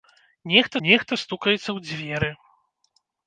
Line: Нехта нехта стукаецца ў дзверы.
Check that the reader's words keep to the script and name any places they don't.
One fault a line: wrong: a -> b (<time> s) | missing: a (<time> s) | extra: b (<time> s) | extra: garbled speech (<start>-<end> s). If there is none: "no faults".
no faults